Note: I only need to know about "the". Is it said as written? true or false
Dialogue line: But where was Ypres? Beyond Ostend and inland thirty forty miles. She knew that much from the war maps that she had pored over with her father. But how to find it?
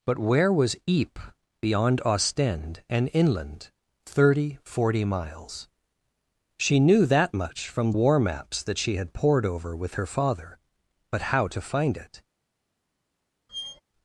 false